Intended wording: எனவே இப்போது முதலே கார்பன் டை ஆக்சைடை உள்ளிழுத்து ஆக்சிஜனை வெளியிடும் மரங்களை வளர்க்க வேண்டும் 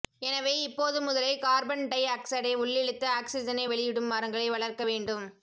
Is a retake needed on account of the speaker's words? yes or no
no